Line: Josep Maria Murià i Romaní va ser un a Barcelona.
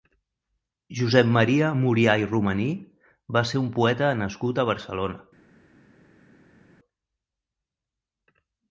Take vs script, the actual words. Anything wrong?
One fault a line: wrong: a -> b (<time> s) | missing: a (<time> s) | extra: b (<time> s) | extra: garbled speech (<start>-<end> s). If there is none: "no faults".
extra: poeta nascut (3.8 s)